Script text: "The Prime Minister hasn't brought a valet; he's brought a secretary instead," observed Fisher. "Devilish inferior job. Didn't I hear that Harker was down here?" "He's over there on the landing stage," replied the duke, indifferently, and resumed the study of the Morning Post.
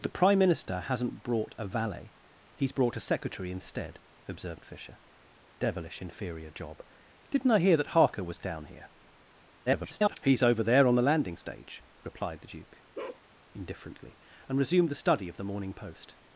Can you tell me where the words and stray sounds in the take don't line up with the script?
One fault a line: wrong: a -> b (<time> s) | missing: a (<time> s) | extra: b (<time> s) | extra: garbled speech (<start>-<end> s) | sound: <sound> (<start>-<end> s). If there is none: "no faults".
extra: garbled speech (9.7-10.2 s)
sound: bark (12.9-13.3 s)